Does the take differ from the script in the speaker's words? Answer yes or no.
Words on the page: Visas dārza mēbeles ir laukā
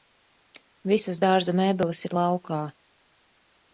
no